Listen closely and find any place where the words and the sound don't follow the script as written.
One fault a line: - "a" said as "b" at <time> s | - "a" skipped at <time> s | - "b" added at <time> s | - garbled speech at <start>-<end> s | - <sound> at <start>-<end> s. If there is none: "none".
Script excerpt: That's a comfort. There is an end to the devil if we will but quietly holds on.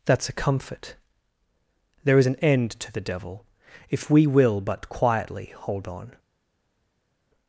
- "holds" said as "hold" at 5.5 s